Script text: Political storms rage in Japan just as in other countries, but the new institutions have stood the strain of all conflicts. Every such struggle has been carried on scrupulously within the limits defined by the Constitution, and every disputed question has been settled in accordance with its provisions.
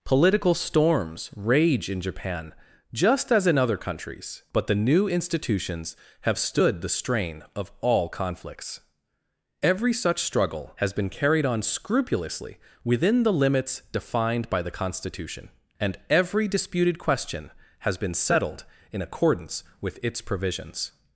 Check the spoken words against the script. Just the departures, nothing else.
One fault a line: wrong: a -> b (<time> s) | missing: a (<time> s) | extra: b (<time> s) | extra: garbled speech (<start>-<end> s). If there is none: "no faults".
no faults